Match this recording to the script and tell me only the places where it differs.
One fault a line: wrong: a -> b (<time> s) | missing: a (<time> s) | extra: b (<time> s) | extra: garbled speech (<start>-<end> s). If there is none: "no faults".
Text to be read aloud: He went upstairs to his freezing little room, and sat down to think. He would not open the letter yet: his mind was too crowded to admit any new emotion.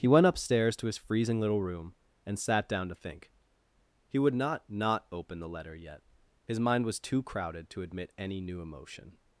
extra: not (4.7 s)